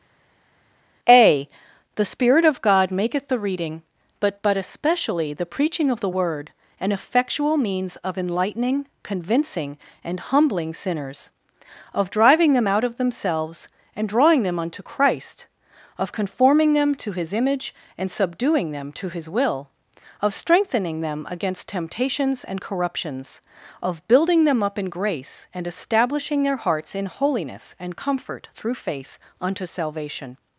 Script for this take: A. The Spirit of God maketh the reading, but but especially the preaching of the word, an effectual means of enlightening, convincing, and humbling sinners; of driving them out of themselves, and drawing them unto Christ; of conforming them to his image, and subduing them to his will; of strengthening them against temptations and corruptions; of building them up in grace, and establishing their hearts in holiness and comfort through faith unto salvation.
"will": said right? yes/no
yes